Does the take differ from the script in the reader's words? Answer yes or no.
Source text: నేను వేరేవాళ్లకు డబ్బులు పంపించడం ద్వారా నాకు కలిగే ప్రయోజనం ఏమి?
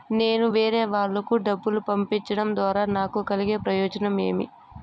no